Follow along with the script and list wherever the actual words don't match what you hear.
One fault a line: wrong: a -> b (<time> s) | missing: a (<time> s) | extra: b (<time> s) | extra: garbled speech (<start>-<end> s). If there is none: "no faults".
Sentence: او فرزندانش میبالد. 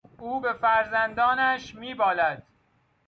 extra: به (0.4 s)